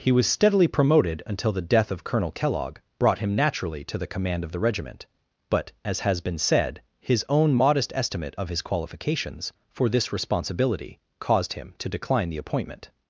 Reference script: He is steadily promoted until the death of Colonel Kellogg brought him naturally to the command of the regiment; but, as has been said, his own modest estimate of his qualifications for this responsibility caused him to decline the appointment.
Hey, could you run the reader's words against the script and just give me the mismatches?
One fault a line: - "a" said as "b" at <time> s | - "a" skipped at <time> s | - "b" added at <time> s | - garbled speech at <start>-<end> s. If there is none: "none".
- "is" said as "was" at 0.1 s